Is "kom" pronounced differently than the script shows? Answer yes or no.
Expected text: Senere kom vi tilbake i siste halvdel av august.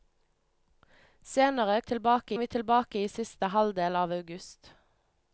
yes